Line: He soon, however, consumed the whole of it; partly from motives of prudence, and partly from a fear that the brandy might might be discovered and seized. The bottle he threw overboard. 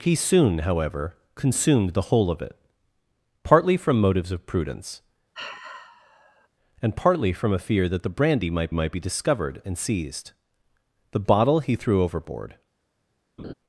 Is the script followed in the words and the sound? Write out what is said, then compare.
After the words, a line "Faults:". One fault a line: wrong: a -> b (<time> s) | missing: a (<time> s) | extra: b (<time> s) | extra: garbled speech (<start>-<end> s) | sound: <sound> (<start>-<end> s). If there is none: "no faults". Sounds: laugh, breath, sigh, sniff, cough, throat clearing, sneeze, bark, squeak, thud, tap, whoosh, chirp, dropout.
He soon, however, consumed the whole of it; partly from motives of prudence, and partly from a fear that the brandy might might be discovered and seized. The bottle he threw overboard.
Faults:
sound: sigh (5.3-6.5 s)
sound: laugh (13.4-13.5 s)